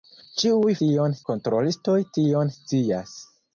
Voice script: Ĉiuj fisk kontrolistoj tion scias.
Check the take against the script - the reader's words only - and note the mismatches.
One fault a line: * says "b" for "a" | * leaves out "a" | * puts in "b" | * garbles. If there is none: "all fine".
* says "tion" for "fisk"